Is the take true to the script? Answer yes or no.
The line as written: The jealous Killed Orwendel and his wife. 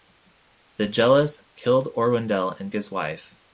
yes